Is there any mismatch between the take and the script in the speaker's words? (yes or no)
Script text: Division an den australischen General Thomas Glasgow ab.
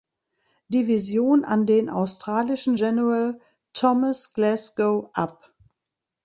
no